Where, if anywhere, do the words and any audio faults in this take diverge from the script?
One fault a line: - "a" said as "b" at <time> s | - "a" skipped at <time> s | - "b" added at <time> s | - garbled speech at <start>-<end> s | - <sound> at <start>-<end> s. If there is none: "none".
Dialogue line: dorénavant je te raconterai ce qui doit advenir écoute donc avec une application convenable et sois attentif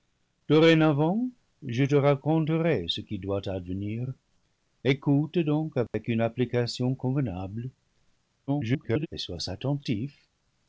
- dropout at 5.9-5.9 s
- garbled speech at 8.5-9.1 s